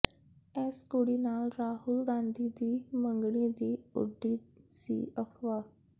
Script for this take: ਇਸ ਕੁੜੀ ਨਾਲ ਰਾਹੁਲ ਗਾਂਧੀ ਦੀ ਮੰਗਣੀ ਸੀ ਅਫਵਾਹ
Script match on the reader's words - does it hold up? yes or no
no